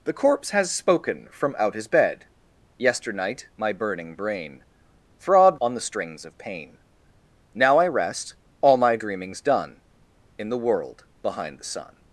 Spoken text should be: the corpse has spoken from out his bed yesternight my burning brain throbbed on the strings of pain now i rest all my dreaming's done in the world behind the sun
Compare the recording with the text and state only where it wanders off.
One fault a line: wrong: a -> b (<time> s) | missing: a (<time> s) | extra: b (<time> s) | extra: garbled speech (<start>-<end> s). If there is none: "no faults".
no faults